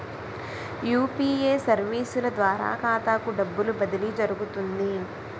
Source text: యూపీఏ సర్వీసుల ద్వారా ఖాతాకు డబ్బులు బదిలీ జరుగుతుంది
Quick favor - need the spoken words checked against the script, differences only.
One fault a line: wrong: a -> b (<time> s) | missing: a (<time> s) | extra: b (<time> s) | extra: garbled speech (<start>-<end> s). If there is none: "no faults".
no faults